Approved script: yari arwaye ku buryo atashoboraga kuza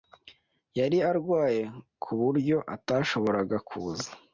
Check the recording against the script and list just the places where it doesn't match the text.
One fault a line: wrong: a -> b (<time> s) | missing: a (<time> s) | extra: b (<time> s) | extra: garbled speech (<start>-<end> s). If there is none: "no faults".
no faults